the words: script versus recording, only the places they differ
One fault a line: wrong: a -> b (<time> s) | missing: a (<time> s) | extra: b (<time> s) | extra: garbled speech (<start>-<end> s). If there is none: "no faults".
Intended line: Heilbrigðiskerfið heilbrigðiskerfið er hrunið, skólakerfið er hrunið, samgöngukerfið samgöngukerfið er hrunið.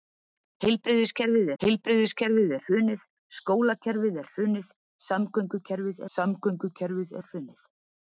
no faults